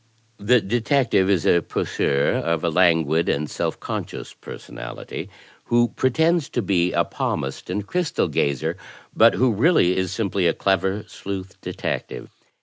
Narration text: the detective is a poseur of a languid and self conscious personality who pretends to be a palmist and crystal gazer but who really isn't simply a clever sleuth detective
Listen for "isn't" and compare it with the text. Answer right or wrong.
wrong